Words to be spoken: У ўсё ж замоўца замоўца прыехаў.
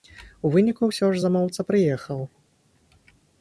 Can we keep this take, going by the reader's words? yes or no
no